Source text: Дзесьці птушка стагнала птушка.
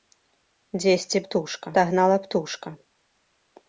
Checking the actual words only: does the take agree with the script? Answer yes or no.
yes